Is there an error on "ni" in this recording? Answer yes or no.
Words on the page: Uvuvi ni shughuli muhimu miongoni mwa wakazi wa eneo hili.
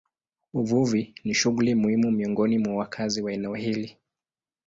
no